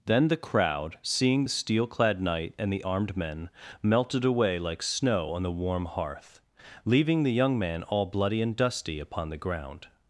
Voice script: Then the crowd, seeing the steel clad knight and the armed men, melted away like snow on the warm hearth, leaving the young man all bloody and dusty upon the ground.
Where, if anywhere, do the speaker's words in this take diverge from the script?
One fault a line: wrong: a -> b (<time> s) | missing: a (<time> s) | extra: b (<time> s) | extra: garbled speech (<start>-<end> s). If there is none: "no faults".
no faults